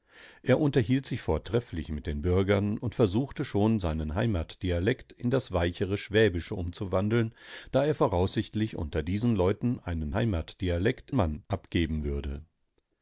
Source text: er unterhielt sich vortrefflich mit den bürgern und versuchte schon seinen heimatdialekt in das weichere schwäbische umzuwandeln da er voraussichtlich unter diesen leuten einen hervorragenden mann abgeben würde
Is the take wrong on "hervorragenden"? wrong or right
wrong